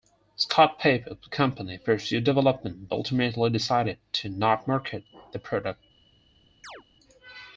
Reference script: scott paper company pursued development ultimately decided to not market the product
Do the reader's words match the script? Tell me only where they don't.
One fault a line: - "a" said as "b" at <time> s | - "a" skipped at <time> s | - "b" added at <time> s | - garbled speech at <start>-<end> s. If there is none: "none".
none